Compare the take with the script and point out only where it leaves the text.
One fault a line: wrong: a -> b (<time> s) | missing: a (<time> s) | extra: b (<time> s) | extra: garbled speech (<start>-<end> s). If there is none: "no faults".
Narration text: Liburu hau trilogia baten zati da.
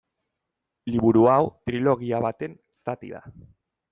no faults